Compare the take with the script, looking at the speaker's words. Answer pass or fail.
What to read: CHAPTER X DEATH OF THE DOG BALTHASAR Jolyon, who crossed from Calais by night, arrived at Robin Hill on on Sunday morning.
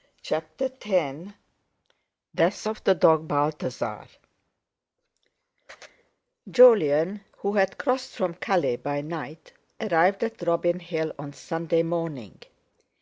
fail